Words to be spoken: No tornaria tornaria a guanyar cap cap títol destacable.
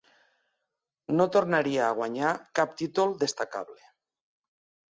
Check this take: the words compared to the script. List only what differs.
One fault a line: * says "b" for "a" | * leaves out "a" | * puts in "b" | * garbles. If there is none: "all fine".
* leaves out "tornaria"
* leaves out "cap"